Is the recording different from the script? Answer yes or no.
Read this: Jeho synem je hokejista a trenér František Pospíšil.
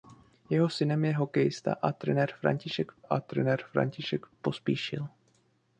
yes